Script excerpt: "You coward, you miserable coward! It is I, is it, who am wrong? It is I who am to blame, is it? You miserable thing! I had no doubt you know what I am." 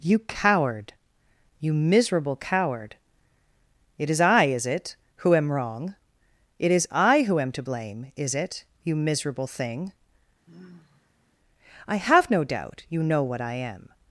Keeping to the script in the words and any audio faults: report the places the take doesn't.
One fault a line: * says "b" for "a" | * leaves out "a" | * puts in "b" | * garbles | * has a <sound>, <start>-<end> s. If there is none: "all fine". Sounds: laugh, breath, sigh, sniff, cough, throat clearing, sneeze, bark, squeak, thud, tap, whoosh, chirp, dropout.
* has a sigh, 10.5-11.4 s
* says "have" for "had"